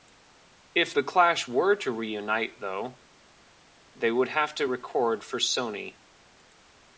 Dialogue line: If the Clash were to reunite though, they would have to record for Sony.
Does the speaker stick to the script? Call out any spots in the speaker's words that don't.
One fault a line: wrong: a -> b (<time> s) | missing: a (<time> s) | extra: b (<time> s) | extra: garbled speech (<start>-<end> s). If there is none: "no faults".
no faults